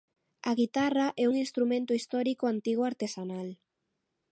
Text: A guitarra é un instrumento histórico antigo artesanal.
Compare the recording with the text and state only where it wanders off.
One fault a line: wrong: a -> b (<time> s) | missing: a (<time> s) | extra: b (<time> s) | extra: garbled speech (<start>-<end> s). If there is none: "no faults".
no faults